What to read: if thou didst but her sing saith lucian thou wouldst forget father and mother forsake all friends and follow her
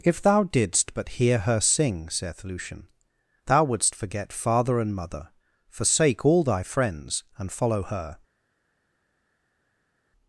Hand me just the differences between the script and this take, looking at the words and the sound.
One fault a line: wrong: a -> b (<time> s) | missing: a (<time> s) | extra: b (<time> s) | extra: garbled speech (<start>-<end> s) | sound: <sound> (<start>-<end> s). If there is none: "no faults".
extra: hear (1.2 s)
extra: thy (6.4 s)